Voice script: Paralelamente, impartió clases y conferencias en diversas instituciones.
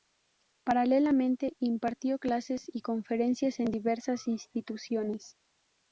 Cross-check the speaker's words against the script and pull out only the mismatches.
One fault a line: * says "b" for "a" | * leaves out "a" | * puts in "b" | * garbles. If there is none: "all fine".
all fine